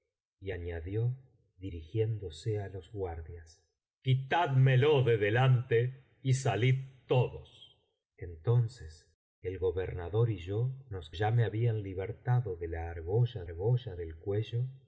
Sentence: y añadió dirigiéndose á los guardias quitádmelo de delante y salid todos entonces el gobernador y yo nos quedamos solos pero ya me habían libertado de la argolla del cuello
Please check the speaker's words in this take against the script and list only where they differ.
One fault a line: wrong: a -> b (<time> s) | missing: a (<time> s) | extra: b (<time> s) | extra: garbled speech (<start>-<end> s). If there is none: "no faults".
missing: quedamos solos pero (11.1 s)
extra: argolla (13.4 s)